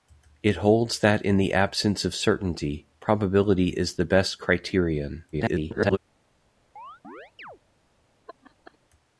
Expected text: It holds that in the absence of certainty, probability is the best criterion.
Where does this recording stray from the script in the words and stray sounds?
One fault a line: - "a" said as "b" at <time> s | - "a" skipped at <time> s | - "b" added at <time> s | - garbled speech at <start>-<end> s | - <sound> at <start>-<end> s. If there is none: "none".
- garbled speech at 5.3-6.0 s
- chirp at 6.8-7.6 s
- laugh at 8.3-8.8 s